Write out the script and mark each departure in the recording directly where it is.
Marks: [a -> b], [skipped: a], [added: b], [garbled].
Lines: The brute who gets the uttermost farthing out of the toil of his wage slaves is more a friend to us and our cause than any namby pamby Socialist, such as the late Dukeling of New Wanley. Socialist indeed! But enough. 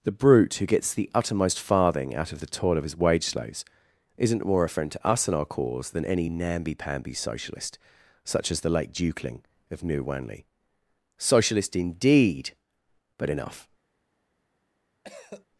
The brute who gets the uttermost farthing out of the toil of his wage slaves [is -> isn't] more a friend to us and our cause than any namby pamby Socialist, such as the late Dukeling of New Wanley. Socialist indeed! But enough.